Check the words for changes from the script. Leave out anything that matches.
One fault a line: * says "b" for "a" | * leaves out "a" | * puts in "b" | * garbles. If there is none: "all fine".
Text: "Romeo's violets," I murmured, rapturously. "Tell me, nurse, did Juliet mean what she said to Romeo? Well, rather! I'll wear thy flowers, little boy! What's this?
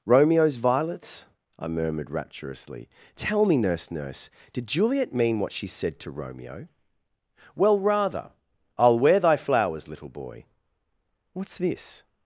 * puts in "nurse"